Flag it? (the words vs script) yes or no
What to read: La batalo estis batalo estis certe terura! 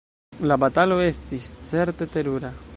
yes